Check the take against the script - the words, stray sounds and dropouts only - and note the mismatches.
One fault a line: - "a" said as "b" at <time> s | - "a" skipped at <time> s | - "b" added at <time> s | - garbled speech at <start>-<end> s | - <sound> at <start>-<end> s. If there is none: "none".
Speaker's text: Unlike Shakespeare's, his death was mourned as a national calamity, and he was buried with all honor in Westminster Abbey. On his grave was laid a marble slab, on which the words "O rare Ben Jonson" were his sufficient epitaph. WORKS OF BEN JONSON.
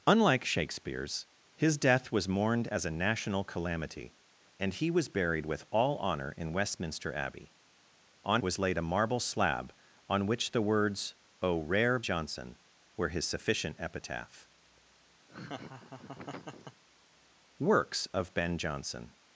- "his grave" skipped at 8.4 s
- "Ben" skipped at 12.0 s
- laugh at 15.3-16.8 s